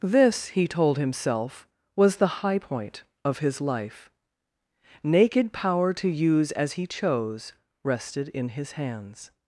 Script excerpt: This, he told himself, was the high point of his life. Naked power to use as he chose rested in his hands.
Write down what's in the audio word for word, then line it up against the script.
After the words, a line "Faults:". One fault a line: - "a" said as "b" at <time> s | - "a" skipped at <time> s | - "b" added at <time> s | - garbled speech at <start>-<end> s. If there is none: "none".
This, he told himself, was the high point of his life. Naked power to use as he chose rested in his hands.
Faults:
none